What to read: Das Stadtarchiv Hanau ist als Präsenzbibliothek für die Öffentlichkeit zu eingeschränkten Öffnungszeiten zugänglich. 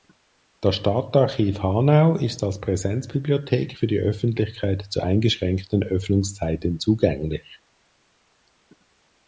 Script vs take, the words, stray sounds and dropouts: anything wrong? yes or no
no